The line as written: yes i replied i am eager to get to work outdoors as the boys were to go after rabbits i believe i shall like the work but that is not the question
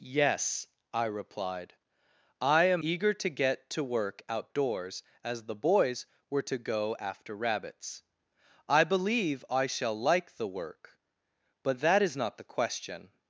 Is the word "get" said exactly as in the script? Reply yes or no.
yes